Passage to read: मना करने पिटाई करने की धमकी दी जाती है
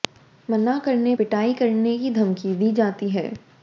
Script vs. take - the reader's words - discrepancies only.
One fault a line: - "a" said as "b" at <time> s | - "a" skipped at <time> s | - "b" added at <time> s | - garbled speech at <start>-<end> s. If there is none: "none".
none